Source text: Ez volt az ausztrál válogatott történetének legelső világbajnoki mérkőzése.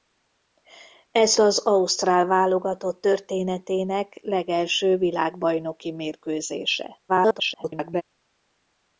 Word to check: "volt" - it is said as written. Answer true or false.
false